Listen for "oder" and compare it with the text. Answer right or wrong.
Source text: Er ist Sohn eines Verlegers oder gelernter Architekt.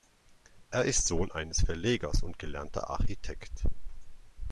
wrong